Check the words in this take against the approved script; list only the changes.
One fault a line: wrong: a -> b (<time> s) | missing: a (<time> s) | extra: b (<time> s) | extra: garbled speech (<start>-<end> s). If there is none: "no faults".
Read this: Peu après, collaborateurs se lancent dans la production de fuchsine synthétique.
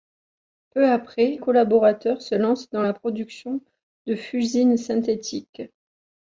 no faults